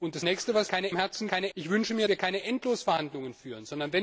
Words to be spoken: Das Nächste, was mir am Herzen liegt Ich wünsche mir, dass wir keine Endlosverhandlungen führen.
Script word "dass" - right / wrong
wrong